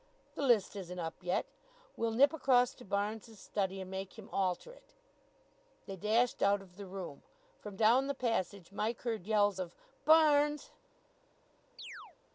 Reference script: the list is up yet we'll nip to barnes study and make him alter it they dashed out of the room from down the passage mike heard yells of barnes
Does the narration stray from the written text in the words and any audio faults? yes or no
yes